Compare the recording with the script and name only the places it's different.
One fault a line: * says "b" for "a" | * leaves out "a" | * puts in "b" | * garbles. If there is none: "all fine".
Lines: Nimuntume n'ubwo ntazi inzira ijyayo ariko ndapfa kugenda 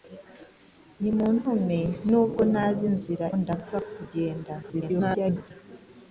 * leaves out "ijyayo ariko"
* garbles